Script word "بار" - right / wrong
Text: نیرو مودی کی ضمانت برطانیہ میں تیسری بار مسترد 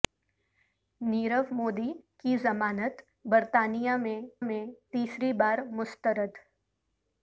right